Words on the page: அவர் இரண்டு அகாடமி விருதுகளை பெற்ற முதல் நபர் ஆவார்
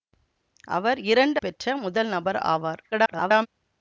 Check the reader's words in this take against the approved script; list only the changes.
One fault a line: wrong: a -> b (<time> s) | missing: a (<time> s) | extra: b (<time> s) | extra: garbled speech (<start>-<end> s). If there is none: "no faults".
missing: அகாடமி விருதுகளை (1.4 s)
extra: garbled speech (2.9-3.5 s)